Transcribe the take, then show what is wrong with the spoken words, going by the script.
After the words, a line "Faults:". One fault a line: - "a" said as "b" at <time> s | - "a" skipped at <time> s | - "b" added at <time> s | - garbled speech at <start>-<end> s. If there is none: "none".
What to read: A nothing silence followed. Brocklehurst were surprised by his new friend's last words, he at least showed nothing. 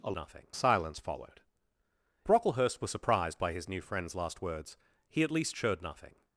A nothing silence followed. Brocklehurst were surprised by his new friend's last words, he at least showed nothing.
Faults:
none